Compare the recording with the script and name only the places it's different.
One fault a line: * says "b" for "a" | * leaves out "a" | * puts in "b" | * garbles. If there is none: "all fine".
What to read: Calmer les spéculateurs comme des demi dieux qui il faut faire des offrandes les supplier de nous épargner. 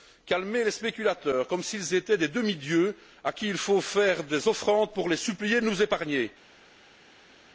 * puts in "s'ils étaient"
* puts in "à"
* puts in "pour"